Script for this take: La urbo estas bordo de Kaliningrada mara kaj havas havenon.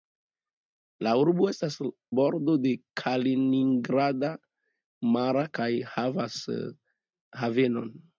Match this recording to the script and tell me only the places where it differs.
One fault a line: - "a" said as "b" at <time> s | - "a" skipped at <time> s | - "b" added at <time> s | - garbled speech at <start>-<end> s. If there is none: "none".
none